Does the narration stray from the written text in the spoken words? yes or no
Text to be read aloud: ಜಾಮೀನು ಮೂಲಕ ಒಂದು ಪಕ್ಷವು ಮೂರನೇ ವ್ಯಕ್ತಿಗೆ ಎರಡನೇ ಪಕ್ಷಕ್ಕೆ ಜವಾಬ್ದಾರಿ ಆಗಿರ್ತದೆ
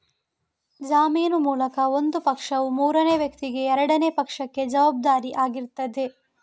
no